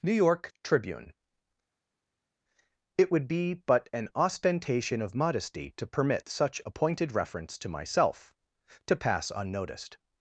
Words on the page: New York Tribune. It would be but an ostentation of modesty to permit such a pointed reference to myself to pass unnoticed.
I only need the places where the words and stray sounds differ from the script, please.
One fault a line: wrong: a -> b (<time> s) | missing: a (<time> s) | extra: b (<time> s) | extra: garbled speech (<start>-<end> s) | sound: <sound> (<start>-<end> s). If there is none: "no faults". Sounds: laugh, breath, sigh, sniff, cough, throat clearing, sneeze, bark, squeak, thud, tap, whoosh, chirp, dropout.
no faults